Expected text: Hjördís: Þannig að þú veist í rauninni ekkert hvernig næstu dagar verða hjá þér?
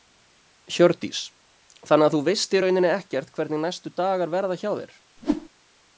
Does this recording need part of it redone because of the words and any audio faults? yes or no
yes